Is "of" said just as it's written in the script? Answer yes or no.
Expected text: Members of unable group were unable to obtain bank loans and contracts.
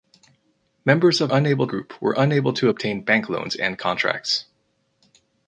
yes